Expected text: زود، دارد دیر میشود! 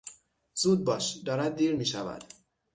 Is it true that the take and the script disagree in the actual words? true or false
true